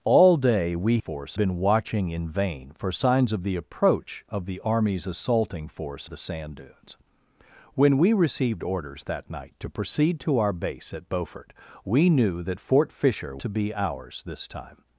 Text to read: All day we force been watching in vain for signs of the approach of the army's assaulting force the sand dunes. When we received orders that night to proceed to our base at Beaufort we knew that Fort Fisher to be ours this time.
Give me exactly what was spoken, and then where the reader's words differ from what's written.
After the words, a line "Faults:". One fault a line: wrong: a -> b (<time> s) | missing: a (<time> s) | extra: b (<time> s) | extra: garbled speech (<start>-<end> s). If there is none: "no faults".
All day we force been watching in vain for signs of the approach of the army's assaulting force the sand dunes. When we received orders that night to proceed to our base at Beaufort we knew that Fort Fisher to be ours this time.
Faults:
no faults